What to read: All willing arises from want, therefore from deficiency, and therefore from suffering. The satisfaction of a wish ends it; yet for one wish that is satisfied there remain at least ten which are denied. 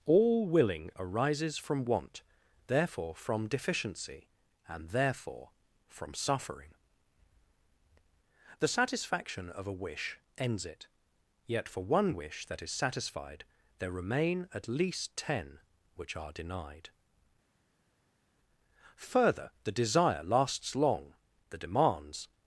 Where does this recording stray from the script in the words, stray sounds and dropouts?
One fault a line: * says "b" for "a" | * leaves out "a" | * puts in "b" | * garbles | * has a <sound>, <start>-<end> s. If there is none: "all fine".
* puts in "Further the desire lasts long the demands"